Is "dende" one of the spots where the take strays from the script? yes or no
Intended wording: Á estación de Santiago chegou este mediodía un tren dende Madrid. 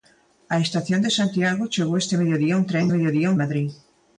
yes